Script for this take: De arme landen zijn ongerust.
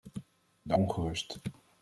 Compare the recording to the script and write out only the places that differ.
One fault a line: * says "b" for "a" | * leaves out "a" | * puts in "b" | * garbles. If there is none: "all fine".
* leaves out "arme landen zijn"